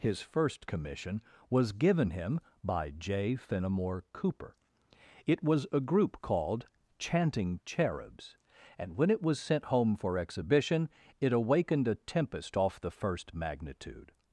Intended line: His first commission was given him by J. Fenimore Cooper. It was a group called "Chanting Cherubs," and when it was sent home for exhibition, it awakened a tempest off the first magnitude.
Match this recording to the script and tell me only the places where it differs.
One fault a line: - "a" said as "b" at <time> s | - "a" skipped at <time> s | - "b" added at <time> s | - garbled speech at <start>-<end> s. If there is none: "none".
none